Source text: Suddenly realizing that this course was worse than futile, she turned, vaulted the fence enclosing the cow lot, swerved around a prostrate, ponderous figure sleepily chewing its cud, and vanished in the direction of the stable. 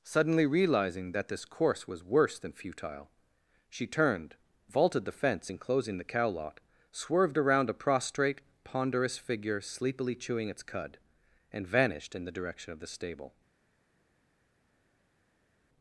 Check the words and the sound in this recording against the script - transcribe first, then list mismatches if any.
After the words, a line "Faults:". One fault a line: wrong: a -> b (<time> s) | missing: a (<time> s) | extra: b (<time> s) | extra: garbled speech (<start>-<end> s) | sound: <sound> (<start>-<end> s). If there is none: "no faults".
Suddenly realizing that this course was worse than futile, she turned, vaulted the fence enclosing the cow lot, swerved around a prostrate, ponderous figure sleepily chewing its cud, and vanished in the direction of the stable.
Faults:
no faults